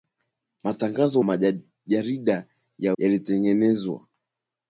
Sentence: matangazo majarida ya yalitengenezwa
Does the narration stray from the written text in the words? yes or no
no